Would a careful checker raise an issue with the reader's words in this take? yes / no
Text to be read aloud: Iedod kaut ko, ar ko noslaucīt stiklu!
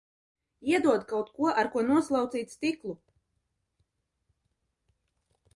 no